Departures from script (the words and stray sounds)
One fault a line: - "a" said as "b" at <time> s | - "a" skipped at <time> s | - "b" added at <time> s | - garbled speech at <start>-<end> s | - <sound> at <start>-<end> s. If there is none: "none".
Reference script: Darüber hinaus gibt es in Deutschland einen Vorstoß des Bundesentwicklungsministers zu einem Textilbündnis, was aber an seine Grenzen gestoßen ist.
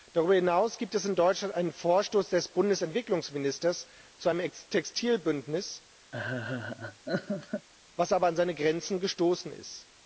- laugh at 6.1-7.7 s